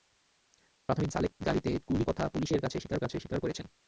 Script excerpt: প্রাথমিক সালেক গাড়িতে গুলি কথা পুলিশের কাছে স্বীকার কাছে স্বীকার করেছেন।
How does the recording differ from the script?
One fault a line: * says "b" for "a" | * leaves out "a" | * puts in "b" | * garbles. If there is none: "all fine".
all fine